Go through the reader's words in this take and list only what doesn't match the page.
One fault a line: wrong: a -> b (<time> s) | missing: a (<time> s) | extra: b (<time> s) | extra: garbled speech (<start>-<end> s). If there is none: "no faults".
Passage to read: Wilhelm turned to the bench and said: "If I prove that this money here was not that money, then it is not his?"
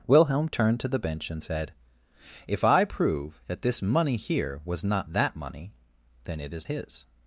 missing: not (6.7 s)